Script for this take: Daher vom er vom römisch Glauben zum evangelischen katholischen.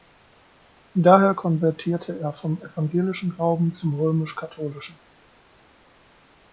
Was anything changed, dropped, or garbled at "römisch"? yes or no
yes